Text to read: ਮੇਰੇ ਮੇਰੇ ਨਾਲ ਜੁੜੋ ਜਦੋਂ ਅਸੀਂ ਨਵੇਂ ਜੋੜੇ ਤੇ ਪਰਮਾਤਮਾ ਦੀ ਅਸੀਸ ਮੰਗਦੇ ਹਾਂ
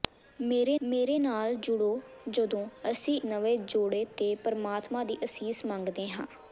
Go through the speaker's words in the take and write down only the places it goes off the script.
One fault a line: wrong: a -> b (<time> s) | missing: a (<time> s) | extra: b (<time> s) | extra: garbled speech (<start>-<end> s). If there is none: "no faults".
no faults